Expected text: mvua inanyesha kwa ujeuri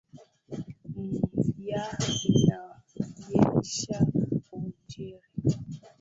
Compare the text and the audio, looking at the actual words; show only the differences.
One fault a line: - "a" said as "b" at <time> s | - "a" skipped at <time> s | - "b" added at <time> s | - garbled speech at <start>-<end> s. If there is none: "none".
- "kwa" skipped at 4.1 s